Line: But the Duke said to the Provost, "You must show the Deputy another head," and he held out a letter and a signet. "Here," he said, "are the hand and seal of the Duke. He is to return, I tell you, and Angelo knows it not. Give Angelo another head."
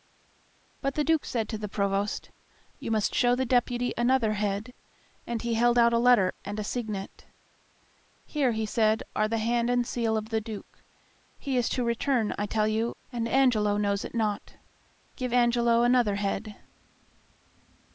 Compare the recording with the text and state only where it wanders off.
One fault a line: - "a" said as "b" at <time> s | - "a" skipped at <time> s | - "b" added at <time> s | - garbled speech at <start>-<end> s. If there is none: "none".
none